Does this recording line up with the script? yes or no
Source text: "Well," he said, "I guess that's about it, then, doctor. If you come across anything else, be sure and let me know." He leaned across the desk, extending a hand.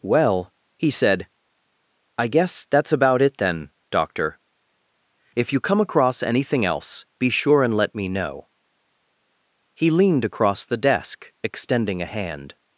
yes